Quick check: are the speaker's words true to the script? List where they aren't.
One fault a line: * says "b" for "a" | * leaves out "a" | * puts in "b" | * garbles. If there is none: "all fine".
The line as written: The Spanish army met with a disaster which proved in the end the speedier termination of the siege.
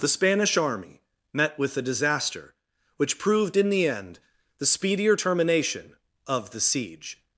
all fine